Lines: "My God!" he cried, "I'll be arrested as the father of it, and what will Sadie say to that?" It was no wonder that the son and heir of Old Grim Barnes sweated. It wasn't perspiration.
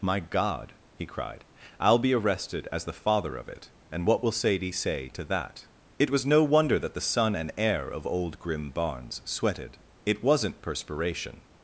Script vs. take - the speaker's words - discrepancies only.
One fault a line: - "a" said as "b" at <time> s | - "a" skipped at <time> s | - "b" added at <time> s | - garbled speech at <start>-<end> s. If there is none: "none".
none